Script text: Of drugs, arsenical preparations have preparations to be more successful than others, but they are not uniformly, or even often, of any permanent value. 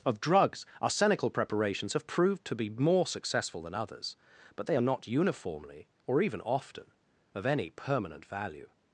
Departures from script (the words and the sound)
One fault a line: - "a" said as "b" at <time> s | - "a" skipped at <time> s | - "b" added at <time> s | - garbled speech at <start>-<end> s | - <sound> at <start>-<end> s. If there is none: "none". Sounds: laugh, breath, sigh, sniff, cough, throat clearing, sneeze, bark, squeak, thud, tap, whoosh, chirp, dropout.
- "preparations" said as "proved" at 2.1 s